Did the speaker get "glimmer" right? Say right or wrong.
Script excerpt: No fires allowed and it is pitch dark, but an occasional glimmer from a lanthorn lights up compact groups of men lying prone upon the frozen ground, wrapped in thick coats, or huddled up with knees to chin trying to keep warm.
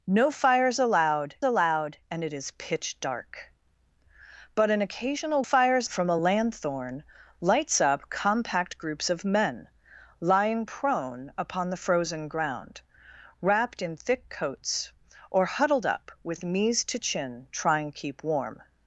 wrong